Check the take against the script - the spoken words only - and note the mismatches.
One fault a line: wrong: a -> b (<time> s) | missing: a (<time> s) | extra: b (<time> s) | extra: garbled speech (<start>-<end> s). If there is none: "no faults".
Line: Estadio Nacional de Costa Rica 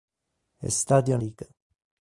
missing: Nacional de Costa (1.2 s)